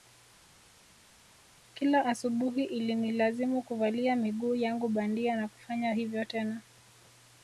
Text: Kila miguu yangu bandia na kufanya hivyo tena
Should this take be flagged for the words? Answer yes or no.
yes